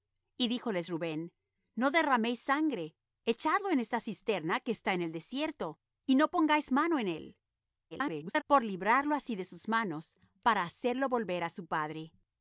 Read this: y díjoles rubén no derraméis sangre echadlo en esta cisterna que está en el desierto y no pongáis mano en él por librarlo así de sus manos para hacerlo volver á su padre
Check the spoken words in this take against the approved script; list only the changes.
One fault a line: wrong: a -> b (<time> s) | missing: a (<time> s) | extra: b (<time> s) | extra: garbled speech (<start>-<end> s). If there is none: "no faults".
extra: garbled speech (7.9-8.4 s)